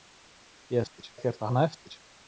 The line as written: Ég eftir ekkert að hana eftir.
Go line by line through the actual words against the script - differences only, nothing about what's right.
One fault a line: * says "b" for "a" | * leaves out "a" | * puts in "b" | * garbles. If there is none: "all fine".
all fine